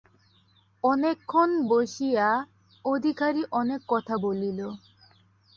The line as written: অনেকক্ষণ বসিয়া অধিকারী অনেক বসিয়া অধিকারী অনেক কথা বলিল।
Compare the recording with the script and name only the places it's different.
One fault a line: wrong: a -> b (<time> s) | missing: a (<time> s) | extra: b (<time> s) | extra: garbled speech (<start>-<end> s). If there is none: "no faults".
missing: বসিয়া অধিকারী অনেক (3.8 s)